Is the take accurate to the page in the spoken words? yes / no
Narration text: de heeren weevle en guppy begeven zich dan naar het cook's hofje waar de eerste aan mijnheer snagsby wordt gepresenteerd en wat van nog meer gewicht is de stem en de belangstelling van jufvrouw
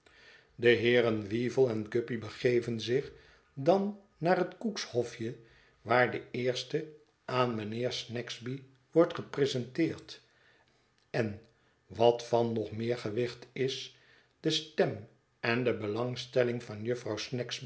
yes